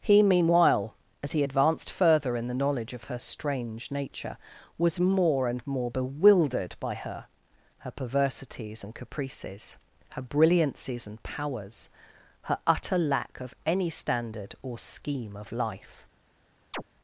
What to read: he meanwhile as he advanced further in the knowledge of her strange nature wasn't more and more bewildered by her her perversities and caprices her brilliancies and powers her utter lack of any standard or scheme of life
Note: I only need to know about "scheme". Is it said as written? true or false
true